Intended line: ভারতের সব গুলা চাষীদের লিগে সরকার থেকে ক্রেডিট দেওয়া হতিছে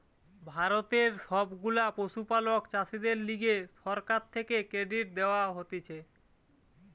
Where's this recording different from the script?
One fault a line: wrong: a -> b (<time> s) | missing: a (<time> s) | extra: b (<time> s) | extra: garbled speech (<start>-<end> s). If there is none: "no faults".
extra: পশুপালক (1.9 s)